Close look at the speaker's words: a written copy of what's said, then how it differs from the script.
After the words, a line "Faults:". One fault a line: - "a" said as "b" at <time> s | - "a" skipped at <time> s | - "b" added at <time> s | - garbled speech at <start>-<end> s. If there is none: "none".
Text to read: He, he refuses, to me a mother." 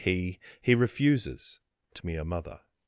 He, he refuses, to me a mother."
Faults:
none